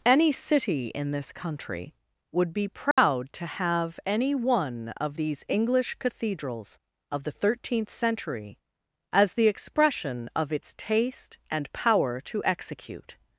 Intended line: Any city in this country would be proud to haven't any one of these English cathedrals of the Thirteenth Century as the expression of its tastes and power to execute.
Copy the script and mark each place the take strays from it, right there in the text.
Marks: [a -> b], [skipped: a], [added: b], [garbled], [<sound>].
Any city in this country would be proud [dropout] to [haven't -> have] any one of these English cathedrals of the Thirteenth Century as the expression of its [tastes -> taste] and power to execute.